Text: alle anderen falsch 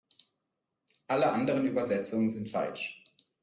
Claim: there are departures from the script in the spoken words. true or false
true